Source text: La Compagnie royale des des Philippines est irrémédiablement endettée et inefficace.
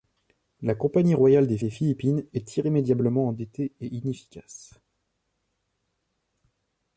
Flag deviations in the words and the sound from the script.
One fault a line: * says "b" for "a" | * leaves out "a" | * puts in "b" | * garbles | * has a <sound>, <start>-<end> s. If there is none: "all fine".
all fine